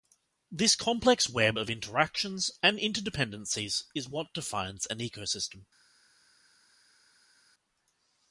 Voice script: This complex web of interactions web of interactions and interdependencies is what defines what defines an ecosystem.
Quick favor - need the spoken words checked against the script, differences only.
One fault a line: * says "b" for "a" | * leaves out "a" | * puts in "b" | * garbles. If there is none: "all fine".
* leaves out "web of interactions"
* leaves out "what defines"